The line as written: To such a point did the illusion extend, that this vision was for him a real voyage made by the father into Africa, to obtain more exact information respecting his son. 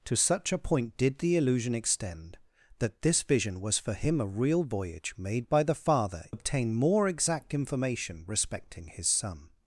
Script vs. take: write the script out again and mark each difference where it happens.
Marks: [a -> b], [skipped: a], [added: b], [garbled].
To such a point did the illusion extend, that this vision was for him a real voyage made by the father [skipped: into Africa, to] obtain more exact information respecting his son.